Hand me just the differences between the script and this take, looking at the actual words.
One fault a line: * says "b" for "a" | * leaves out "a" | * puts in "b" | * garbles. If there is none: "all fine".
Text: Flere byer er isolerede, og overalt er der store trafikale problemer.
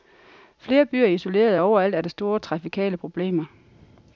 all fine